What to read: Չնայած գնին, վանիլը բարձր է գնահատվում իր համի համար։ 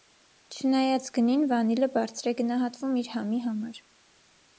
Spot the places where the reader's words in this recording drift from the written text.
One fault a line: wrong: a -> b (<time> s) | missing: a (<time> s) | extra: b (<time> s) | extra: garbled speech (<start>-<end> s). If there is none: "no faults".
no faults